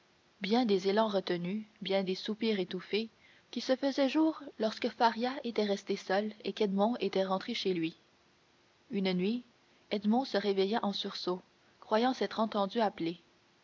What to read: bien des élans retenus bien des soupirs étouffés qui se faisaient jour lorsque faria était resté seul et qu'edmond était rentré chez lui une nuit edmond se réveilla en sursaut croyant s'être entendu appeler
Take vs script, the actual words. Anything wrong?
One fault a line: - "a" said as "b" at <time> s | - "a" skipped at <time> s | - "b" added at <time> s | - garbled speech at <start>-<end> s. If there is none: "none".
none